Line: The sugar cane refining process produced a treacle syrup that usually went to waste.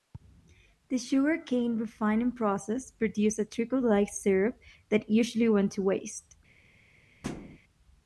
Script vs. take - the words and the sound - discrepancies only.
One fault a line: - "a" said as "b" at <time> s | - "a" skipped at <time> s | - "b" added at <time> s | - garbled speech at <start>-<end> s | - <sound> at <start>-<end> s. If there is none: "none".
- "like" added at 3.8 s
- thud at 7.2-7.6 s